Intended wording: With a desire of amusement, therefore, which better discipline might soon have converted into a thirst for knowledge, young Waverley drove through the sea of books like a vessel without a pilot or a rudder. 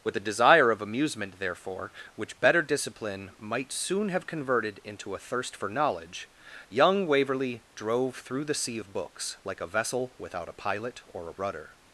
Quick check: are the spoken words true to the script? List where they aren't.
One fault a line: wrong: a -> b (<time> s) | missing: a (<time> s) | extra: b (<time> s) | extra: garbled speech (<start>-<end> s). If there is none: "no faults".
no faults